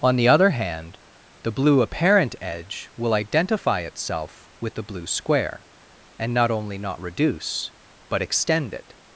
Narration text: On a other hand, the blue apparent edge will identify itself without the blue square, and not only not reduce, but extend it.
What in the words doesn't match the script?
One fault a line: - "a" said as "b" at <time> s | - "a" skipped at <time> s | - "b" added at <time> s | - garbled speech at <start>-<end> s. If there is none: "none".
- "a" said as "the" at 0.1 s
- "without" said as "with" at 4.6 s